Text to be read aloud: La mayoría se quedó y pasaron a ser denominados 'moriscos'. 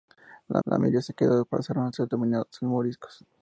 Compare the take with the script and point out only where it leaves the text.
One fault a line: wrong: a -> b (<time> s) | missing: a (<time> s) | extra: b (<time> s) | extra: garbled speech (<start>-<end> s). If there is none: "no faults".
extra: la (0.6 s)